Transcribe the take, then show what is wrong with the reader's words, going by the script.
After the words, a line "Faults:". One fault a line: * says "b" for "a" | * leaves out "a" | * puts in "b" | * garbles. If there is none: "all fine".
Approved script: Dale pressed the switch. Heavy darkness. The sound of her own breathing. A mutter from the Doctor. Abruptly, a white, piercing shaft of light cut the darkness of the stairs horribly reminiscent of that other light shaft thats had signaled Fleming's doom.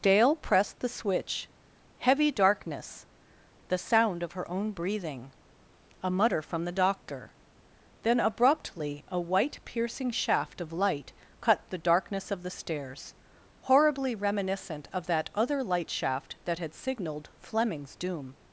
Dale pressed the switch. Heavy darkness. The sound of her own breathing. A mutter from the Doctor. Then, abruptly, a white, piercing shaft of light cut the darkness of the stairs horribly reminiscent of that other light shaft that had signaled Fleming's doom.
Faults:
* puts in "Then"
* says "that" for "thats"